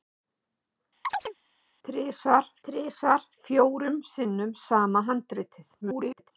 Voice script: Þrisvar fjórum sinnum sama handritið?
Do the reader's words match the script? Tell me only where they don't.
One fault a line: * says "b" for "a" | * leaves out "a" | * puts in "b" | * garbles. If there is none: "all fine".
* puts in "þrisvar"
* garbles